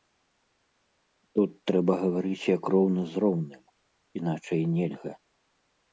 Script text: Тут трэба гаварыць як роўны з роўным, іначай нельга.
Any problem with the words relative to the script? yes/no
no